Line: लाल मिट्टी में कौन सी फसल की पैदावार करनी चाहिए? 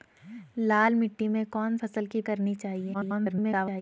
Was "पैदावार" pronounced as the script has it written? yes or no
no